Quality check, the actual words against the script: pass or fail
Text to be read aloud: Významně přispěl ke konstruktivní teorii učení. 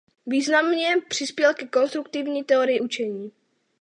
pass